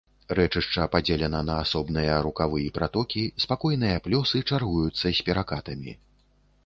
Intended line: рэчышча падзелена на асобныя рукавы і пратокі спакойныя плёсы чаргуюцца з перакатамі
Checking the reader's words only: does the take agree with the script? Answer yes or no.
yes